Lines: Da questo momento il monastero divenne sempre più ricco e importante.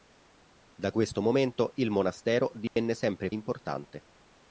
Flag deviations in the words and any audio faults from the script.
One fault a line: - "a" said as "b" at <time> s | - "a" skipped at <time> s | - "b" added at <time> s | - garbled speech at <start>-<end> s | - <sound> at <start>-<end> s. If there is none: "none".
- dropout at 2.7-2.8 s
- "più ricco e" skipped at 3.3 s